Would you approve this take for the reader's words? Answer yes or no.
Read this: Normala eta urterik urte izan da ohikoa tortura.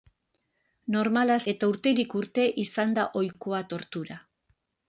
yes